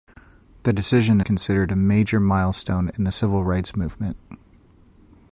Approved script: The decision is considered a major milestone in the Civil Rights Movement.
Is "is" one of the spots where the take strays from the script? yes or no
yes